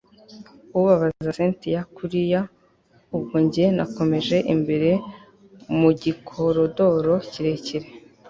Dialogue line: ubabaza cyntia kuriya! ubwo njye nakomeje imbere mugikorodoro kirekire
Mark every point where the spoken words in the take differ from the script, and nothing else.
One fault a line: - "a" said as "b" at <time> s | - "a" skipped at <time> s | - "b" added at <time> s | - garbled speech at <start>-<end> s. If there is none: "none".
none